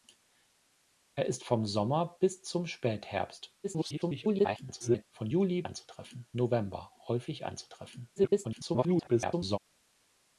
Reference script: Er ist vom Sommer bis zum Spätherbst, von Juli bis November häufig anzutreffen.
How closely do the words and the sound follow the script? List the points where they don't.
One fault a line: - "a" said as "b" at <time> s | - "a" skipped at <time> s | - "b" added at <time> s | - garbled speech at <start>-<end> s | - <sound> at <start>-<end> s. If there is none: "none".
- garbled speech at 3.6-5.0 s
- "bis" said as "anzutreffen" at 5.6 s
- garbled speech at 8.2-9.6 s